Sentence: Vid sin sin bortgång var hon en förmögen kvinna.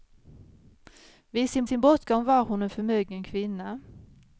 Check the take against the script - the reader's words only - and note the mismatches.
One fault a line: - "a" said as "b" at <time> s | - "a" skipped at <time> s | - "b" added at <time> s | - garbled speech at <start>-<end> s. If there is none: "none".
none